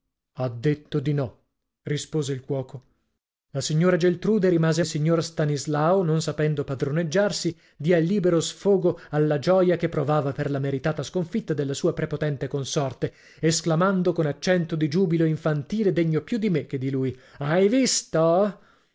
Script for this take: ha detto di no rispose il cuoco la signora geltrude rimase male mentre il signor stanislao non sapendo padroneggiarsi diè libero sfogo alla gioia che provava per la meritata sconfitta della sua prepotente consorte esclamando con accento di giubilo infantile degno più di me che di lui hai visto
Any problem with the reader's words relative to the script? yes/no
yes